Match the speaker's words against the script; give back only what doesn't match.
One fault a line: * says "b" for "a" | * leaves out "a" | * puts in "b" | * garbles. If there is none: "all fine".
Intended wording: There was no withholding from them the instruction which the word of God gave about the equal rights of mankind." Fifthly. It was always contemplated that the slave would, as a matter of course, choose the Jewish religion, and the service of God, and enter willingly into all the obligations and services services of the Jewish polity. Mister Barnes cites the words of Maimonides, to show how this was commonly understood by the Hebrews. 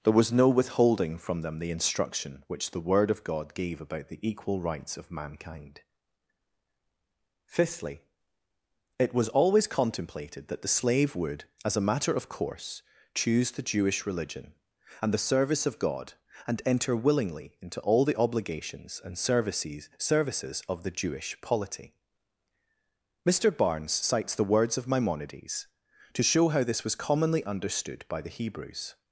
all fine